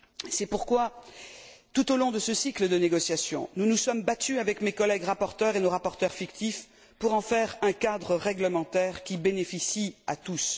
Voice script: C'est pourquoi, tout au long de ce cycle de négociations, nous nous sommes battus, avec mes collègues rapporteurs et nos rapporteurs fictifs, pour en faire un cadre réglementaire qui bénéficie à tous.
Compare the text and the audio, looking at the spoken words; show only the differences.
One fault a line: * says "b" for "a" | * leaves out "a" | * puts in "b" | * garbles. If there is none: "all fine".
all fine